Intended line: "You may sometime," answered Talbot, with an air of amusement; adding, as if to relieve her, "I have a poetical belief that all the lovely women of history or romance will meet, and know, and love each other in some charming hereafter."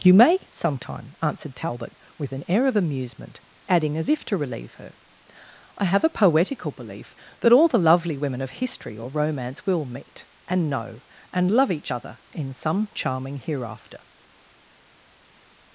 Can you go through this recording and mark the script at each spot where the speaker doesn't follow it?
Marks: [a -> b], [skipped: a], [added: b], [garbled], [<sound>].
"You may sometime," answered Talbot, with an air of amusement; adding, as if to relieve her, "I have a poetical belief that all the lovely women of history or romance will meet, and know, and love each other in some charming hereafter."